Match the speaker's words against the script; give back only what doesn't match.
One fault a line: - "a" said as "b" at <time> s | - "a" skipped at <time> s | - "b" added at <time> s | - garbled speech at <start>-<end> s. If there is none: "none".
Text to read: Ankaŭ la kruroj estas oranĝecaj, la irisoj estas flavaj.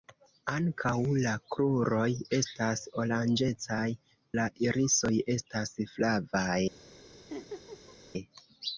none